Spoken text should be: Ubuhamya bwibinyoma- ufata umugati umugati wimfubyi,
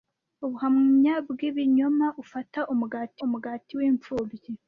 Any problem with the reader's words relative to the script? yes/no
no